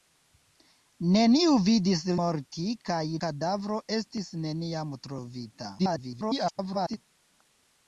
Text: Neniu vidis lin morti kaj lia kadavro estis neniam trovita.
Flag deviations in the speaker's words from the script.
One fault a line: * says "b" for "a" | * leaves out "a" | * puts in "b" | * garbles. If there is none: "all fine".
* leaves out "lin"
* leaves out "lia"
* garbles